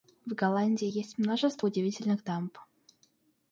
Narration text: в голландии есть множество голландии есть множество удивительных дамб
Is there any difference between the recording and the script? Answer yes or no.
yes